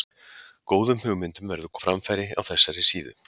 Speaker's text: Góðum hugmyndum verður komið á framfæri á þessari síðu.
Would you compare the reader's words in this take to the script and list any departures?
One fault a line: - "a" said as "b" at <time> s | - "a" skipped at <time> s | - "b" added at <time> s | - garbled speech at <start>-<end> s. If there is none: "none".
- "komið" skipped at 1.7 s